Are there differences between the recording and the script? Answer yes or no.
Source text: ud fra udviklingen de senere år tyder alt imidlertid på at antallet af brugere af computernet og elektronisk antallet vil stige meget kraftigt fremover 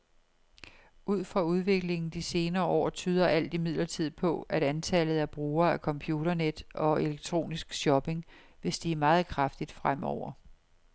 yes